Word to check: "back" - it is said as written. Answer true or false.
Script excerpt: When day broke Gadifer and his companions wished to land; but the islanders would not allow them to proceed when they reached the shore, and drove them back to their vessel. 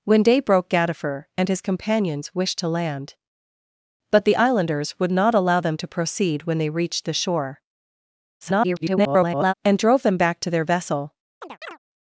true